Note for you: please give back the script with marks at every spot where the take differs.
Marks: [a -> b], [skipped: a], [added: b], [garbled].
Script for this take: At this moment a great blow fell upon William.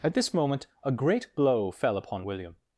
At this moment a great blow fell upon William.